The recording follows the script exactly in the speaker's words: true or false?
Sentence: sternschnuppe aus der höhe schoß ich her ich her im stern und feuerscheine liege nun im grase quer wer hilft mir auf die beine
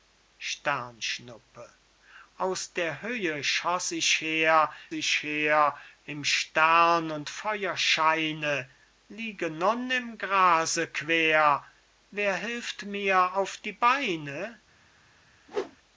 true